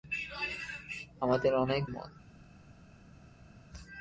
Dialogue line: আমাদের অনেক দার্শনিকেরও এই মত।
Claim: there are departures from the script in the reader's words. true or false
true